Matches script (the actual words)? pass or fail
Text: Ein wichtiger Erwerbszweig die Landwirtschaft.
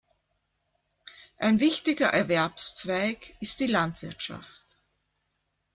fail